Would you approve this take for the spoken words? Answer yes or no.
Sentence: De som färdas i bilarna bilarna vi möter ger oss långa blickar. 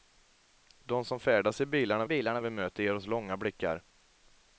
yes